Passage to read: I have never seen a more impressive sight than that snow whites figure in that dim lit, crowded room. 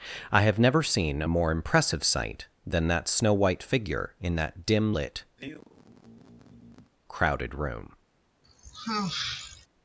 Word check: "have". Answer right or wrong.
right